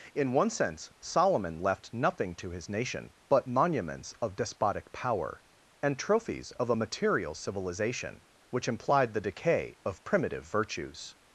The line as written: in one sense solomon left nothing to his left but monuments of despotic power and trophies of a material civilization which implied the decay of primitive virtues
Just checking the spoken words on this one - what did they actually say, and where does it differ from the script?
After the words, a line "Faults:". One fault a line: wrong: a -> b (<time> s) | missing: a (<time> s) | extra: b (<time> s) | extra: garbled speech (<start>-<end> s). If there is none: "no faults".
in one sense solomon left nothing to his nation but monuments of despotic power and trophies of a material civilization which implied the decay of primitive virtues
Faults:
wrong: left -> nation (2.7 s)